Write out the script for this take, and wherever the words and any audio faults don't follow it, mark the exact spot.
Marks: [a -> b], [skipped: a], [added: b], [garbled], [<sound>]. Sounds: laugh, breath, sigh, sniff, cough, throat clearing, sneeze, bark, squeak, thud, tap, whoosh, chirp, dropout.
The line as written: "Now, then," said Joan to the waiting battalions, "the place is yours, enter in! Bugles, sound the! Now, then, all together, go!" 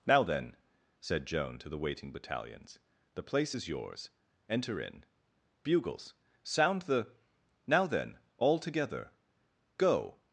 "Now, then," said Joan to the waiting battalions, "the place is yours, enter in! Bugles, sound the! Now, then, all together, go!"